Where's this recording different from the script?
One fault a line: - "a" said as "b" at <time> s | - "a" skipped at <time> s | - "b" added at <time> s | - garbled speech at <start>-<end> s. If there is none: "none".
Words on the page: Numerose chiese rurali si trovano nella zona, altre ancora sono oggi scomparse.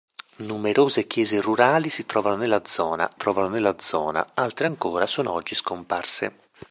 - "trovano nella zona" added at 3.2 s